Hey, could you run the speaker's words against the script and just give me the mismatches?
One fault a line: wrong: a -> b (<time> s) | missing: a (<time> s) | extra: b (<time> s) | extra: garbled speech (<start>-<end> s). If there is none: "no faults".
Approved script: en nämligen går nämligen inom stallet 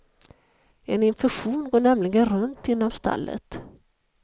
wrong: nämligen -> infektion (1.0 s)
extra: runt (2.3 s)